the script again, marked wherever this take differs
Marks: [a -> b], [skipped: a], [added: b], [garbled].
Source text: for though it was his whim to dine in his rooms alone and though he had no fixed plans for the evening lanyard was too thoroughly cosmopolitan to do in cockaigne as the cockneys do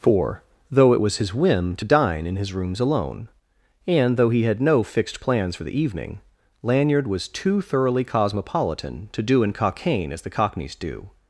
for though it was his whim to dine in his rooms alone and though he had no fixed plans for the evening lanyard was too thoroughly cosmopolitan to do in cockaigne as the cockneys do